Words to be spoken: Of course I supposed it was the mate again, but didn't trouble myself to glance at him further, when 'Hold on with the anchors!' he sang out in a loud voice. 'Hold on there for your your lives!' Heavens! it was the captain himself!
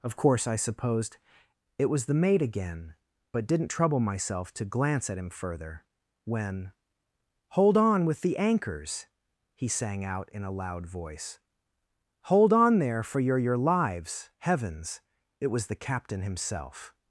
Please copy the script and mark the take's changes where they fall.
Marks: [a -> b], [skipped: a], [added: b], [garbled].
Of course I supposed it was the mate again, but didn't trouble myself to glance at him further, when 'Hold on with the anchors!' he sang out in a loud voice. 'Hold on there for your your lives!' Heavens! it was the captain himself!